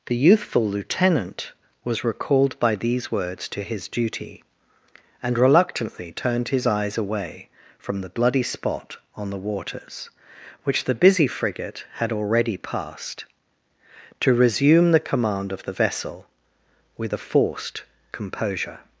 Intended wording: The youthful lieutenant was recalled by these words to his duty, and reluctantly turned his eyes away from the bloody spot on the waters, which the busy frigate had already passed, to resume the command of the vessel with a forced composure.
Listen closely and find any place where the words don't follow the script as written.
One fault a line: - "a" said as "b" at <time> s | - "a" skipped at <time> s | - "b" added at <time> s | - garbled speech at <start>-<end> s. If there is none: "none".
none